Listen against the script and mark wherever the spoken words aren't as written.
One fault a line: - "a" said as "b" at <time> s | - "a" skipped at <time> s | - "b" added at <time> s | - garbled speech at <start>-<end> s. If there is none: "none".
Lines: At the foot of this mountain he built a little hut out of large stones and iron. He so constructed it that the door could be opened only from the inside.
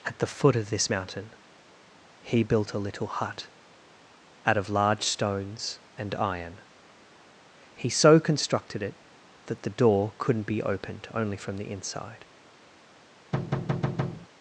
- "could" said as "couldn't" at 10.2 s